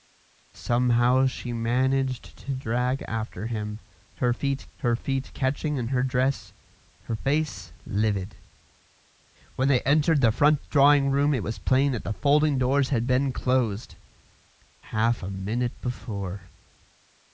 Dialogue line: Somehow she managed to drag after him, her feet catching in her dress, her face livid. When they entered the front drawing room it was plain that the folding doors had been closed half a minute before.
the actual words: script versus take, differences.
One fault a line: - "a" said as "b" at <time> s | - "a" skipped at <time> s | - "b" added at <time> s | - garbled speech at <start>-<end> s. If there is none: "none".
- "her feet" added at 4.8 s